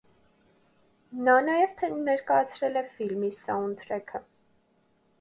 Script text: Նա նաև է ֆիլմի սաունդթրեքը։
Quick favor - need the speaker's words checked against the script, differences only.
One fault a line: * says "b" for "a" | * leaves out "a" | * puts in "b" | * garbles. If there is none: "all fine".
* puts in "ներկայացրել"